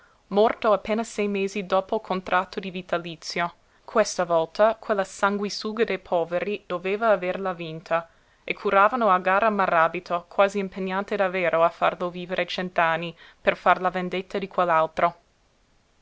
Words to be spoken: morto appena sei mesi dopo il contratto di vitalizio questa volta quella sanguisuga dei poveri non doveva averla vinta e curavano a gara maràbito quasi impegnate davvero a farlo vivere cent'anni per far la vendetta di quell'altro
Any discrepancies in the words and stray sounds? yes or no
yes